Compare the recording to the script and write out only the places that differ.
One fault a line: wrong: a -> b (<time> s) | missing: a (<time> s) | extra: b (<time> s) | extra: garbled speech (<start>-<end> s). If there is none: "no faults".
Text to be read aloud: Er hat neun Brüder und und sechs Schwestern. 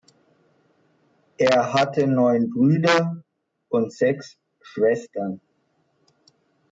wrong: hat -> hatte (1.7 s)
missing: und (3.9 s)